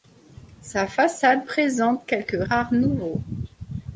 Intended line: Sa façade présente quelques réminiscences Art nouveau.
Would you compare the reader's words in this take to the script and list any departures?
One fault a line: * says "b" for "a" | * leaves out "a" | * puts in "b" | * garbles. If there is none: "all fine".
* leaves out "réminiscences"